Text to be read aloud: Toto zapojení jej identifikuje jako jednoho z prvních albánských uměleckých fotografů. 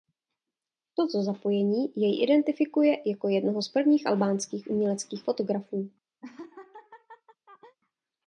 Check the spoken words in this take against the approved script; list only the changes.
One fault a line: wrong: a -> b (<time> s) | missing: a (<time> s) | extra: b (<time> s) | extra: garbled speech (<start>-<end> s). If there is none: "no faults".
no faults